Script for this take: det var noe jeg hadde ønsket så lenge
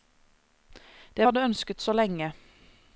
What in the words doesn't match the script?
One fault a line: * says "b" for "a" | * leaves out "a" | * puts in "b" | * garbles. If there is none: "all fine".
* leaves out "var noe jeg"